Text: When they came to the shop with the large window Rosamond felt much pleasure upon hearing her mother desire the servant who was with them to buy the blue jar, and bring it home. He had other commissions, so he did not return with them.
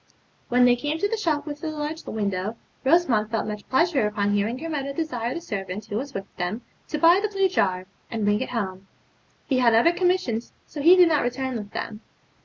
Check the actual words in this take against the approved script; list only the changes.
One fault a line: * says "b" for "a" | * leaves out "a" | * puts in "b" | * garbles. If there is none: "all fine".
all fine